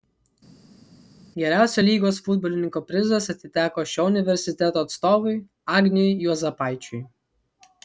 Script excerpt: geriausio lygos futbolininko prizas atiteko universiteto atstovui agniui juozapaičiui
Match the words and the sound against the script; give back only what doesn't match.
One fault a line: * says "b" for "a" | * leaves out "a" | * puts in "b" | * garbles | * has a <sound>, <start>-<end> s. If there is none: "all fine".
* puts in "šio"